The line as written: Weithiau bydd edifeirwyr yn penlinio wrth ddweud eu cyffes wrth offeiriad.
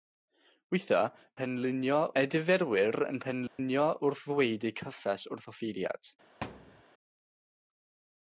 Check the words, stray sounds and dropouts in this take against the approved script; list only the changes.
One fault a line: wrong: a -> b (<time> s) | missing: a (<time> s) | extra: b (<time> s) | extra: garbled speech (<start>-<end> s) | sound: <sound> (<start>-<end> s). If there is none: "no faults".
wrong: bydd -> penlinio (1.4 s)
sound: dropout (3.5-3.6 s)
sound: thud (6.4-6.8 s)